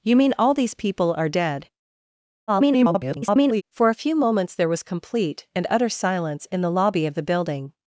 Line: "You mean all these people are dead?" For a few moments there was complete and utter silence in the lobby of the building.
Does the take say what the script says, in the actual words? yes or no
no